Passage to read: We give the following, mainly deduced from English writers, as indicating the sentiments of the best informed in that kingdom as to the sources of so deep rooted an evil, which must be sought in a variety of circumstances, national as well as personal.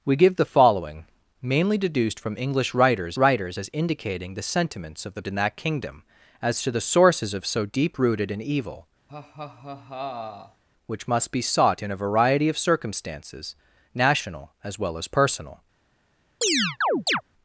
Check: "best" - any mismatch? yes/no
yes